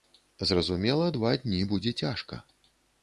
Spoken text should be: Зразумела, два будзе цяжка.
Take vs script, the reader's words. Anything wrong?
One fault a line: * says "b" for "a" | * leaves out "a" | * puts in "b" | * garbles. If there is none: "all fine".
* puts in "дні"